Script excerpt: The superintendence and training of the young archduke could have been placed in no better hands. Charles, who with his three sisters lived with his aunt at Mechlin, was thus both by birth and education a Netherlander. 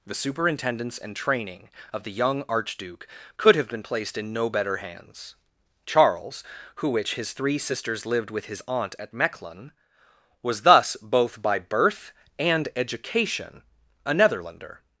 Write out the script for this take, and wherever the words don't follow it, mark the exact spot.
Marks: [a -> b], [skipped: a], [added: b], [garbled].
The superintendence and training of the young archduke could have been placed in no better hands. Charles, who [with -> which] his three sisters lived with his aunt at Mechlin, was thus both by birth and education a Netherlander.